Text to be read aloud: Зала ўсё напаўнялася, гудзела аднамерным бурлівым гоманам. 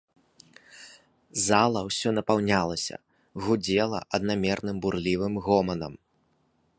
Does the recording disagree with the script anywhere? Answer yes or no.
no